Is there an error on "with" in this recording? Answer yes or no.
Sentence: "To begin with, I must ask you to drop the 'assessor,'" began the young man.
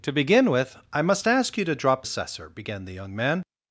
no